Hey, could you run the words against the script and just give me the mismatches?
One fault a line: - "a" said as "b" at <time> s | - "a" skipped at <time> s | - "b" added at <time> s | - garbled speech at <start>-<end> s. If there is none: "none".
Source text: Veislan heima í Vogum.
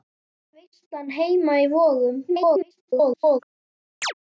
- garbled speech at 2.3-3.4 s